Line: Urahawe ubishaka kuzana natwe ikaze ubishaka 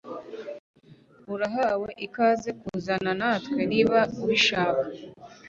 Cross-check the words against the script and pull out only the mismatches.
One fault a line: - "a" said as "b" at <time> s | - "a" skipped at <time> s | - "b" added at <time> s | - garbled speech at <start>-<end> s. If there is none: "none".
- "ubishaka" said as "ikaze" at 2.0 s
- "ikaze" said as "niba" at 3.7 s